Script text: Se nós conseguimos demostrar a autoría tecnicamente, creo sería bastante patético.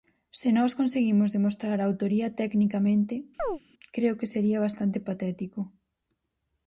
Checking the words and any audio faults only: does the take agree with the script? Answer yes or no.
no